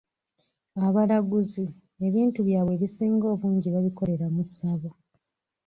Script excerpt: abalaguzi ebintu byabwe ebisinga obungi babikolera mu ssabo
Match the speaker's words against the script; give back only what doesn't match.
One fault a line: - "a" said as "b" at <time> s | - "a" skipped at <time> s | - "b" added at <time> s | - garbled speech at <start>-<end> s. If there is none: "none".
none